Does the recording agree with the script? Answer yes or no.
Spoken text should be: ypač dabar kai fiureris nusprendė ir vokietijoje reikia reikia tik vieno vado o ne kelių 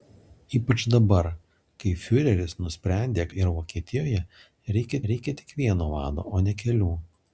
yes